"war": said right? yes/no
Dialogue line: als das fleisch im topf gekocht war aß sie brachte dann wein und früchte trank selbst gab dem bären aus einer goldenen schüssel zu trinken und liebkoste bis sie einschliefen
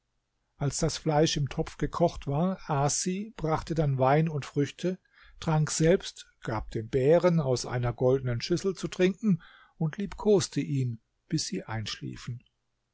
yes